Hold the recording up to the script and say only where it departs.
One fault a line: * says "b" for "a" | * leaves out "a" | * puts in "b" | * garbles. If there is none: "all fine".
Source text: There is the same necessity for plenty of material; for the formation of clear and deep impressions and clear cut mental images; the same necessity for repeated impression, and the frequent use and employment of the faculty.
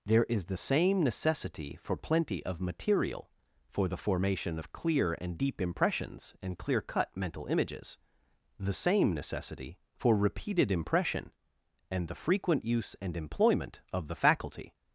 all fine